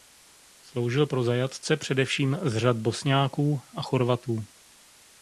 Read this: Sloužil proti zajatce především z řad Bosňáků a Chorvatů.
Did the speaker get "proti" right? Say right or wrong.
wrong